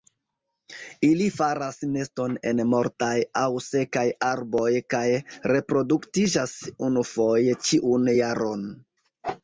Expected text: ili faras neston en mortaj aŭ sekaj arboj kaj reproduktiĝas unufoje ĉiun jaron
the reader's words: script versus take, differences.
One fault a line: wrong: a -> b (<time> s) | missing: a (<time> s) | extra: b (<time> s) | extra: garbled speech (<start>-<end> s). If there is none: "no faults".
no faults